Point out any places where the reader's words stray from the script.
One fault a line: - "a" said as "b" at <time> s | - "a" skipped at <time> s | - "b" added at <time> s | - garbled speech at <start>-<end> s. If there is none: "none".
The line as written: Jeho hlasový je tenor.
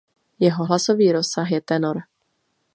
- "rozsah" added at 1.1 s